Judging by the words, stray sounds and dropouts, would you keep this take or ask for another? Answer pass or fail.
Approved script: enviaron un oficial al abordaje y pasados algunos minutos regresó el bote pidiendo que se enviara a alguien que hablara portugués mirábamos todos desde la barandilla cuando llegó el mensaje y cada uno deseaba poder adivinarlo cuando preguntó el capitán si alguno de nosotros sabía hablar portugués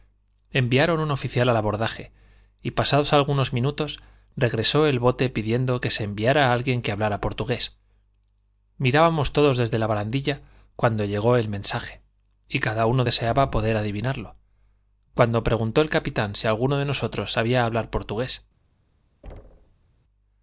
fail